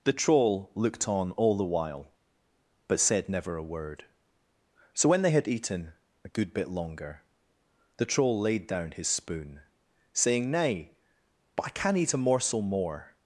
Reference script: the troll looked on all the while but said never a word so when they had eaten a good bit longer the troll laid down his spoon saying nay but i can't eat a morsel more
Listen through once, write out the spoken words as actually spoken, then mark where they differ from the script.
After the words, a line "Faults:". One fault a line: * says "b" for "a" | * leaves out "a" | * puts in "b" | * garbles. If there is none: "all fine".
the troll looked on all the while but said never a word so when they had eaten a good bit longer the troll laid down his spoon saying nay but i can eat a morsel more
Faults:
* says "can" for "can't"